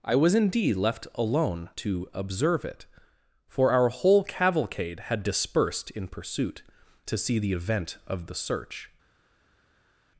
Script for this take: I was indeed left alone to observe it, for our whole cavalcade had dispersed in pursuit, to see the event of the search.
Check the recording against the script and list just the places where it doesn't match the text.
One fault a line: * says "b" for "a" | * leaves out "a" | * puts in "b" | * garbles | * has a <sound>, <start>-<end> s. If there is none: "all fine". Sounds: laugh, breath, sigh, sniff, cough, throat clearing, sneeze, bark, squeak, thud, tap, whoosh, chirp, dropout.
all fine